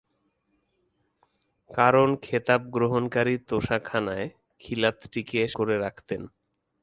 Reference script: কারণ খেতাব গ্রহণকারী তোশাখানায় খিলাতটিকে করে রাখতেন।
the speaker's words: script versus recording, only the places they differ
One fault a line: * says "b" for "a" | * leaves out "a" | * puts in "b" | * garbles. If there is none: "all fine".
all fine